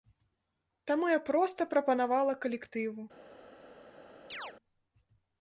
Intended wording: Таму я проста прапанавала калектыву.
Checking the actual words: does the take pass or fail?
pass